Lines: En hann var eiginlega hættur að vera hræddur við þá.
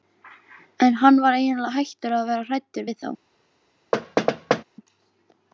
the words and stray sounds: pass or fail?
fail